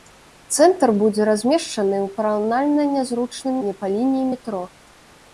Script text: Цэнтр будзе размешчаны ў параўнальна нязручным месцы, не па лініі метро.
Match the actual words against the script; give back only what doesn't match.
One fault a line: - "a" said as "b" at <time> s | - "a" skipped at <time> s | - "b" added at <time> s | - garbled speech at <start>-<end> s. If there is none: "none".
- "месцы" skipped at 3.6 s